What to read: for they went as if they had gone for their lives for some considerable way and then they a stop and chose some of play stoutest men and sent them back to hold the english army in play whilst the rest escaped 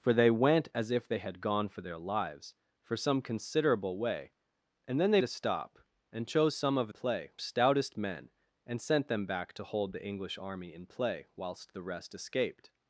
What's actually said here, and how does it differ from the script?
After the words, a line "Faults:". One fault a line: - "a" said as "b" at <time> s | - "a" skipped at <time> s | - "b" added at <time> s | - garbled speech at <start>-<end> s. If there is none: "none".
for they went as if they had gone for their lives for some considerable way and then they a stop and chose some of play stoutest men and sent them back to hold the english army in play whilst the rest escaped
Faults:
none